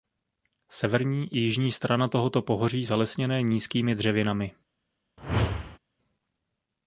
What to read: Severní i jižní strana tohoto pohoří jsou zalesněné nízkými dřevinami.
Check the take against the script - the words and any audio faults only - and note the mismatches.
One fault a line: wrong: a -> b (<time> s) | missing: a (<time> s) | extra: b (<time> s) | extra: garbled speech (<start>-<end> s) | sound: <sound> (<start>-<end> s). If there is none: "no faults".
missing: jsou (2.9 s)
sound: whoosh (5.2-5.8 s)